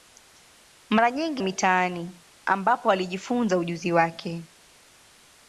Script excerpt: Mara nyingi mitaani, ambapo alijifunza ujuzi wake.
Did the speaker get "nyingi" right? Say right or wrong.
right